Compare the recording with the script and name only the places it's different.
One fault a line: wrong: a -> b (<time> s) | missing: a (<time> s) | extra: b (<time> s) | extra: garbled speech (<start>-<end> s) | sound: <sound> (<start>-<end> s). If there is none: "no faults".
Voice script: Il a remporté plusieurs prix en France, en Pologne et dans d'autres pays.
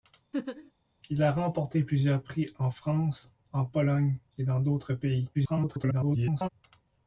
sound: laugh (0.3-0.7 s)
extra: garbled speech (5.3-6.5 s)